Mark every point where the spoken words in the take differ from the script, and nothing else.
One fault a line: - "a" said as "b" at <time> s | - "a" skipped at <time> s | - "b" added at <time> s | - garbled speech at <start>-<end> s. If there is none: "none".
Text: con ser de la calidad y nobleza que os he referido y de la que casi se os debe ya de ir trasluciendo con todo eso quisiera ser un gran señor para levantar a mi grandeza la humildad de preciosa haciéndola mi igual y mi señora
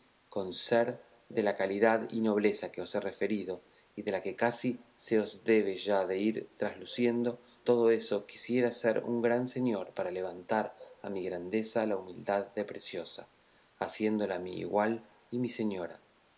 - "con" skipped at 7.4 s